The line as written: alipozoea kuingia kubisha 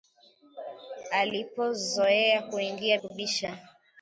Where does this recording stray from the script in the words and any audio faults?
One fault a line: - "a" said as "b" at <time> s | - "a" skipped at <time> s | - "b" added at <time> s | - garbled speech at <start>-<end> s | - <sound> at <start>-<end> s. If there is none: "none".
none